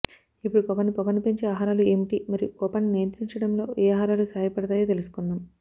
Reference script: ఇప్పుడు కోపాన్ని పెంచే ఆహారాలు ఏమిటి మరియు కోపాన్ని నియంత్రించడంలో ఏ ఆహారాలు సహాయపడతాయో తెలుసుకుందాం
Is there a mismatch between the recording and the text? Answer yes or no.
yes